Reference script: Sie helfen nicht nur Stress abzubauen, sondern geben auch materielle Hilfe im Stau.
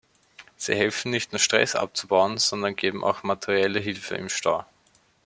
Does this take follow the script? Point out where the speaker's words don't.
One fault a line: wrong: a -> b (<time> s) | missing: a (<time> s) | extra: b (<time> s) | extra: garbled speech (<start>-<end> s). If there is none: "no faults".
no faults